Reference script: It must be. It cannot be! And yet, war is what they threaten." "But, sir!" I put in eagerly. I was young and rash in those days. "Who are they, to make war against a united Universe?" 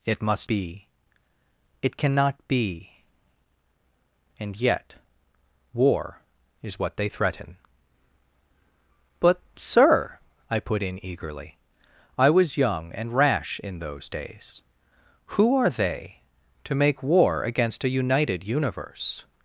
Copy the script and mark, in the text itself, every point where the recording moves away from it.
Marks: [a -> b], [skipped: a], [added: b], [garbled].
It must be. It cannot be! And yet, war is what they threaten." "But, sir!" I put in eagerly. I was young and rash in those days. "Who are they, to make war against a united Universe?"